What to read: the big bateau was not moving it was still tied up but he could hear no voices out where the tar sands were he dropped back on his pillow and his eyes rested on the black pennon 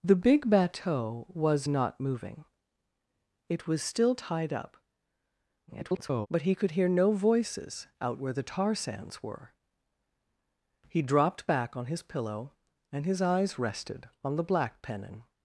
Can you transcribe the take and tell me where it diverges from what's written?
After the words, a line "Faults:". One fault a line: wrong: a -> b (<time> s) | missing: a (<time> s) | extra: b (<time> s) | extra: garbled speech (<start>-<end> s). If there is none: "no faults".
the big bateau was not moving it was still tied up [garbled] but he could hear no voices out where the tar sands were he dropped back on his pillow and his eyes rested on the black pennon
Faults:
extra: garbled speech (5.7-6.3 s)